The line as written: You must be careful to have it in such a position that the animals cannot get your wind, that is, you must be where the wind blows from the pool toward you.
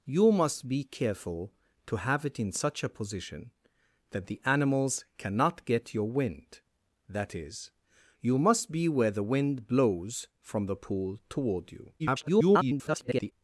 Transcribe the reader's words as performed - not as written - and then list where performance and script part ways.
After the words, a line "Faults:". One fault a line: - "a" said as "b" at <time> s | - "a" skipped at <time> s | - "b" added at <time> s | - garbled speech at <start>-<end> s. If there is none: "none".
You must be careful to have it in such a position that the animals cannot get your wind, that is, you must be where the wind blows from the pool toward you. [garbled]
Faults:
- garbled speech at 12.0-13.3 s